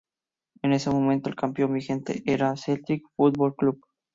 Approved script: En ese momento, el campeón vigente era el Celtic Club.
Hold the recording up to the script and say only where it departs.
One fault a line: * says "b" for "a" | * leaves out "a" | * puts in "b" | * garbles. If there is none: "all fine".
* puts in "Football"